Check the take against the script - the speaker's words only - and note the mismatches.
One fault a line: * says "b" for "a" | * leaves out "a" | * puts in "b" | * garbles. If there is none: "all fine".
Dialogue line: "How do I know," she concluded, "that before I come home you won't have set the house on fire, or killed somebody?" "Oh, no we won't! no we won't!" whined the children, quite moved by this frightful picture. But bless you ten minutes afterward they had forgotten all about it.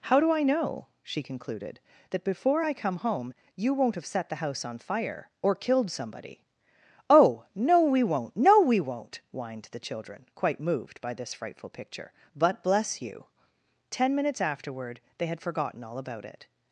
all fine